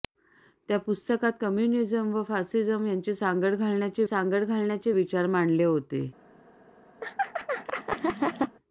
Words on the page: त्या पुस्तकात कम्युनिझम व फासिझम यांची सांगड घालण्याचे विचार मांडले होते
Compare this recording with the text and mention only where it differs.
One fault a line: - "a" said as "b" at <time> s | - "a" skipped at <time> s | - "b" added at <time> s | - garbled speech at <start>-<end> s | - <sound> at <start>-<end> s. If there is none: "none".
- "सांगड घालण्याचे" added at 4.0 s
- laugh at 7.0-8.6 s